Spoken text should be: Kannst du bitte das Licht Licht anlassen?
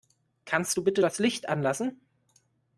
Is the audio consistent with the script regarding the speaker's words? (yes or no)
no